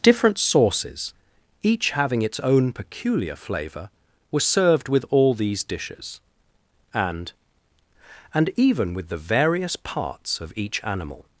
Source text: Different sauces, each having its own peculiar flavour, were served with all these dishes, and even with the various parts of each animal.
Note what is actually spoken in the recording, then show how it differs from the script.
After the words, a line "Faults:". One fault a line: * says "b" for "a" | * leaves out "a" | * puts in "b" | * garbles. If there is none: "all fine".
Different sauces, each having its own peculiar flavour, were served with all these dishes, and and even with the various parts of each animal.
Faults:
* puts in "and"